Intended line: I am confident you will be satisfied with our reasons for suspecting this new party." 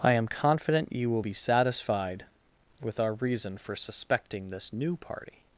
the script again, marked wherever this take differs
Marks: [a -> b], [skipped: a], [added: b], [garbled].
I am confident you will be satisfied with our [reasons -> reason] for suspecting this new party."